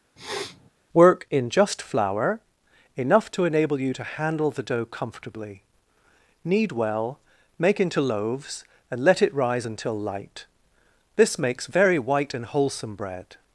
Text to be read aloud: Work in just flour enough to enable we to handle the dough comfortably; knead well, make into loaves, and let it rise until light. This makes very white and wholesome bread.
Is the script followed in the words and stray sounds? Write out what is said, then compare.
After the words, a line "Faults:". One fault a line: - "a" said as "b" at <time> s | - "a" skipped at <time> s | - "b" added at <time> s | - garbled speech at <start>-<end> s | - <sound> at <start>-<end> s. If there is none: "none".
Work in just flour enough to enable you to handle the dough comfortably; knead well, make into loaves, and let it rise until light. This makes very white and wholesome bread.
Faults:
- sniff at 0.2-0.7 s
- "we" said as "you" at 3.8 s